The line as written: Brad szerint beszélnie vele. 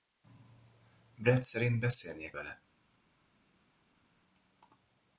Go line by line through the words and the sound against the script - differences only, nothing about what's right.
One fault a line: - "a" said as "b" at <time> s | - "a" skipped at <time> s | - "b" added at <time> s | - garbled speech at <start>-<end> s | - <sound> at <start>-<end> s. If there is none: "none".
none